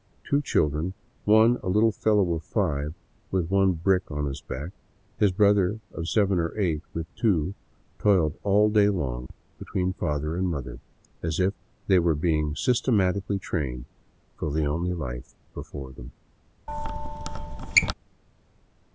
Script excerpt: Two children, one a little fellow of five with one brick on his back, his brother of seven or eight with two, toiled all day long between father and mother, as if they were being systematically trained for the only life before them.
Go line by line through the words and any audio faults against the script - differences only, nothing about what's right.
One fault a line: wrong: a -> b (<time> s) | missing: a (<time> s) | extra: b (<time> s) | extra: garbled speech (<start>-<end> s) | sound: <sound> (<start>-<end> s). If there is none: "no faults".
sound: dropout (9.3-9.3 s)
sound: squeak (16.7-17.9 s)